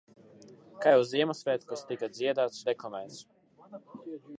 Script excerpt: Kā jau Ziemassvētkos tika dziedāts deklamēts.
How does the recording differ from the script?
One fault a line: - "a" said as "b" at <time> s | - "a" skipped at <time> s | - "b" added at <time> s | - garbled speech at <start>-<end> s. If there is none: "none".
none